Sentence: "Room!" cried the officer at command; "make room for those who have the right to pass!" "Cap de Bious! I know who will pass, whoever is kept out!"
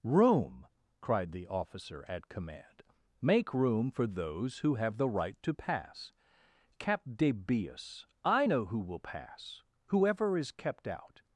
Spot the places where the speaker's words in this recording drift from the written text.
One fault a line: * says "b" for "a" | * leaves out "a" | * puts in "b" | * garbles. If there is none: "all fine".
all fine